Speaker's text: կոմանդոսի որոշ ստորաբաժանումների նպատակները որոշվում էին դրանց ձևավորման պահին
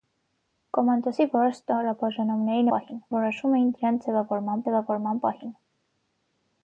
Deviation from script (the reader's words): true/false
true